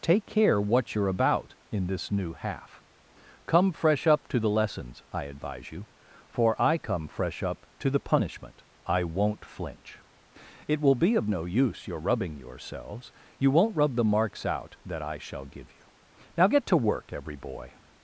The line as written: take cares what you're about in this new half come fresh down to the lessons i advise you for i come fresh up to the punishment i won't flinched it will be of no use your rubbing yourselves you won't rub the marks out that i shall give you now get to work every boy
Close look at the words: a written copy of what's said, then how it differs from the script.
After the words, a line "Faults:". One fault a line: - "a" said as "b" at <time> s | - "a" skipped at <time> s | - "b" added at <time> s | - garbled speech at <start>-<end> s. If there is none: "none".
take care what you're about in this new half come fresh up to the lessons i advise you for i come fresh up to the punishment i won't flinch it will be of no use your rubbing yourselves you won't rub the marks out that i shall give you now get to work every boy
Faults:
- "cares" said as "care" at 0.2 s
- "down" said as "up" at 4.1 s
- "flinched" said as "flinch" at 9.4 s